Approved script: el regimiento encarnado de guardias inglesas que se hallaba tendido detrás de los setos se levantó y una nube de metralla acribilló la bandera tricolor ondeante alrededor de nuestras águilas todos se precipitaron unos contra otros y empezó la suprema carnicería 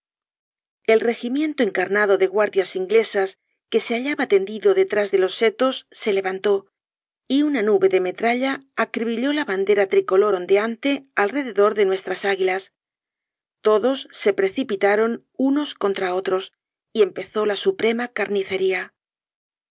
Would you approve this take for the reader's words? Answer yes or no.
yes